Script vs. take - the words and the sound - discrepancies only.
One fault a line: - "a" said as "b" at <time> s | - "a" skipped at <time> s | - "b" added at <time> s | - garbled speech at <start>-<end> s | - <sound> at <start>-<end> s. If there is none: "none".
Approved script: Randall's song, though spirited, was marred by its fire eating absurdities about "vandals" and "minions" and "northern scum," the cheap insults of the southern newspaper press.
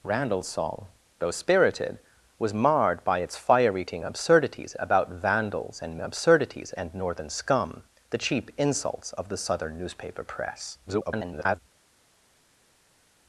- "minions" said as "absurdities" at 6.0 s
- garbled speech at 10.9-11.6 s